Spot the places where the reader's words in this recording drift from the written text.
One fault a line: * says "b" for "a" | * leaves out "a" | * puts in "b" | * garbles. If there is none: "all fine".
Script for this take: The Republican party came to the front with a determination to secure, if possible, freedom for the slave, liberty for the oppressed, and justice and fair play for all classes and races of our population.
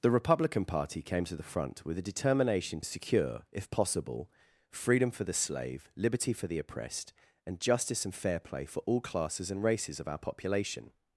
* leaves out "to"